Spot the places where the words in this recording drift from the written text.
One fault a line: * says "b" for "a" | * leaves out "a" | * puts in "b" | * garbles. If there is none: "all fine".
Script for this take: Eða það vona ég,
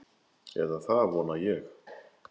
all fine